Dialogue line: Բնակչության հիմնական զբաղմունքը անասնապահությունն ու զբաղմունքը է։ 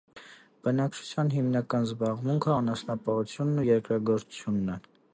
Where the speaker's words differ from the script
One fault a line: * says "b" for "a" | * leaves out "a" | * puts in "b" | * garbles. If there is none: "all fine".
* says "երկրագործությունն" for "զբաղմունքը"